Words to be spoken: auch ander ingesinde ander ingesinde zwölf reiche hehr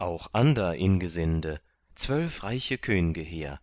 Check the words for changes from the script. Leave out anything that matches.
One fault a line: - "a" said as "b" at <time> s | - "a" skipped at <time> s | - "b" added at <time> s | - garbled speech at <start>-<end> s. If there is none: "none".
- "ander ingesinde" skipped at 1.6 s
- "könge" added at 2.8 s